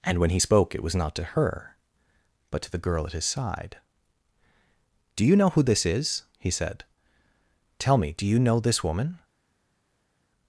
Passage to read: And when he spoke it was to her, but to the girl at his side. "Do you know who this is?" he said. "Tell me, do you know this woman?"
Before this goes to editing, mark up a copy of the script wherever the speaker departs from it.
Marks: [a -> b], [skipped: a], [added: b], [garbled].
And when he spoke it was [added: not] to her, but to the girl at his side. "Do you know who this is?" he said. "Tell me, do you know this woman?"